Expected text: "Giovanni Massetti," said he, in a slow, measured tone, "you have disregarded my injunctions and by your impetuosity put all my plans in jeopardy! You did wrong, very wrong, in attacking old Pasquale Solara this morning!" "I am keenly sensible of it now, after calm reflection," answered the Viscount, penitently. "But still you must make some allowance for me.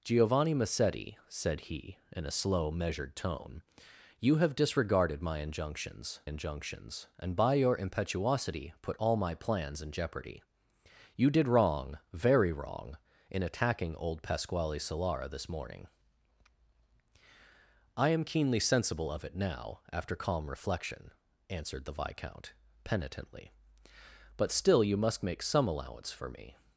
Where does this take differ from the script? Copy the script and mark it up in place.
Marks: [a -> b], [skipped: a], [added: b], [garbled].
"Giovanni Massetti," said he, in a slow, measured tone, "you have disregarded my injunctions [added: injunctions] and by your impetuosity put all my plans in jeopardy! You did wrong, very wrong, in attacking old Pasquale Solara this morning!" "I am keenly sensible of it now, after calm reflection," answered the Viscount, penitently. "But still you must make some allowance for me.